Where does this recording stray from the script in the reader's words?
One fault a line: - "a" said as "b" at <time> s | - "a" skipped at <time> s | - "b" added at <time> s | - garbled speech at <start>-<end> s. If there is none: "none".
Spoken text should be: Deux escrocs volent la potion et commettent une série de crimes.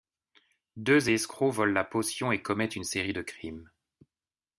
none